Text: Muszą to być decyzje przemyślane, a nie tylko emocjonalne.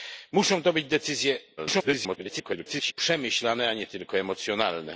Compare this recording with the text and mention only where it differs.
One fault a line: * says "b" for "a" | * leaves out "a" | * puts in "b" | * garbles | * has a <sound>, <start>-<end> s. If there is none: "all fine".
* garbles